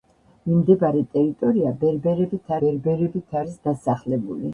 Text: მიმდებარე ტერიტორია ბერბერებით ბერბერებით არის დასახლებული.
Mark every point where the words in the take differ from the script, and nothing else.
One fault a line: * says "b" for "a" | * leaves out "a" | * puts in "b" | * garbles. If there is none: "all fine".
all fine